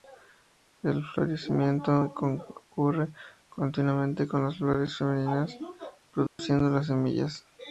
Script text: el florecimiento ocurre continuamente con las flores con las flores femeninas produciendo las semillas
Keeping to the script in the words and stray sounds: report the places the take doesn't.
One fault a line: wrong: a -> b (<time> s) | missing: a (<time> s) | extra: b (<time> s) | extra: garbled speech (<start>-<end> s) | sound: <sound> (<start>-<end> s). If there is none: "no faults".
missing: con las flores (5.0 s)
sound: dropout (6.3-6.4 s)